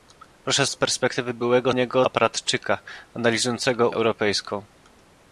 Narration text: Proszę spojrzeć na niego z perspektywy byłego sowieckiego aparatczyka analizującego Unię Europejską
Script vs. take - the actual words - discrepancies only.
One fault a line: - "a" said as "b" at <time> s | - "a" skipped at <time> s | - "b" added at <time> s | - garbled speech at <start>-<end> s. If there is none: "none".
- "spojrzeć na niego" skipped at 0.7 s
- "sowieckiego" said as "niego" at 1.7 s
- "Unię" skipped at 3.9 s